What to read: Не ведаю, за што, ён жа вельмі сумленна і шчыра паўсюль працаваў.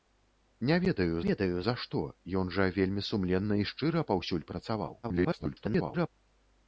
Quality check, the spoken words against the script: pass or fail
fail